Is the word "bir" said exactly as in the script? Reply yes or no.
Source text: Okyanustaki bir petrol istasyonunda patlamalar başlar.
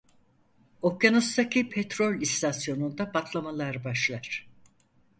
no